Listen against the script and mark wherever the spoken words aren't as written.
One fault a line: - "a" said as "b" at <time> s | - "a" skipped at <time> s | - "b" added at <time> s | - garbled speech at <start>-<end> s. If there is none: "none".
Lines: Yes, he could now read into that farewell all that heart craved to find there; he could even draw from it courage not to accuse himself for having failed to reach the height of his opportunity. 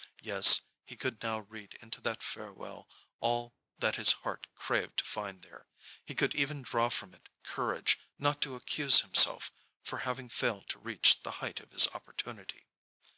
- "his" added at 4.0 s